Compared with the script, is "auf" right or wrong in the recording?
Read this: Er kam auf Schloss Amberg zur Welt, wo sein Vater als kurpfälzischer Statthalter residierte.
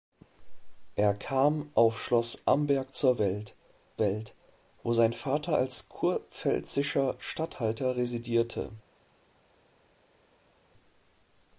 right